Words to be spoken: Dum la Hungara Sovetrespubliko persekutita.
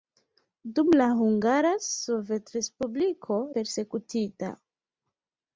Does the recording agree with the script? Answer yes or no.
yes